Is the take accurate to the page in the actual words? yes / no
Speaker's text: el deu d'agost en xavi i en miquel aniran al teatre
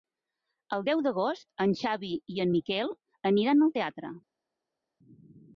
yes